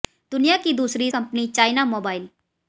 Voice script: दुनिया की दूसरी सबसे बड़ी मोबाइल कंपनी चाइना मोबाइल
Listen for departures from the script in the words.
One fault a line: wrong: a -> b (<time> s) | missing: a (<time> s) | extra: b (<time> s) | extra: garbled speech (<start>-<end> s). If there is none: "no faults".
missing: सबसे बड़ी मोबाइल (1.1 s)